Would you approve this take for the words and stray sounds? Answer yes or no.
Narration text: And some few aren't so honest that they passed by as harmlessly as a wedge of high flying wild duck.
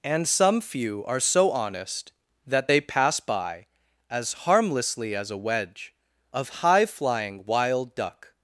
no